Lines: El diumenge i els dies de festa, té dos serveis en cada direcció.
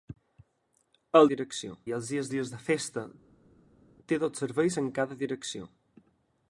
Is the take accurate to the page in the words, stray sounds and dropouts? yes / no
no